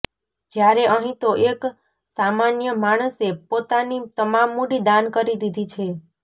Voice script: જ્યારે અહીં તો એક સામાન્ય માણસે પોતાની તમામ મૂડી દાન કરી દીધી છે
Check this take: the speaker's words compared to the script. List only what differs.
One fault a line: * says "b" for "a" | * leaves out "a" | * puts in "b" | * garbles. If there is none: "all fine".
all fine